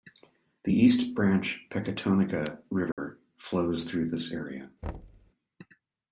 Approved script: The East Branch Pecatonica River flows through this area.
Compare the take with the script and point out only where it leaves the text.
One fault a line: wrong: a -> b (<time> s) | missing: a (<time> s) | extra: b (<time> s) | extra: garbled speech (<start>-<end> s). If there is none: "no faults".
no faults